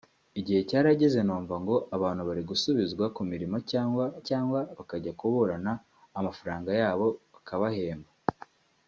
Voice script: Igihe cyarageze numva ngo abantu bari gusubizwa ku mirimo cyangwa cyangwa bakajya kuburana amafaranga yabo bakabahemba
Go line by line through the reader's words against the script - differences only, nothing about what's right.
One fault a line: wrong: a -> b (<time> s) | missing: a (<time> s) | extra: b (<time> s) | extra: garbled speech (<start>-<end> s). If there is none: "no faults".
no faults